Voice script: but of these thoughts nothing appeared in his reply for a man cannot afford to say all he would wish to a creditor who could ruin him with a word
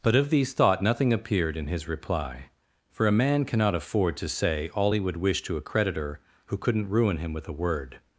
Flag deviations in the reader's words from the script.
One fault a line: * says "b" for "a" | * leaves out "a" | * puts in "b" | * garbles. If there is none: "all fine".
* says "thought" for "thoughts"
* says "couldn't" for "could"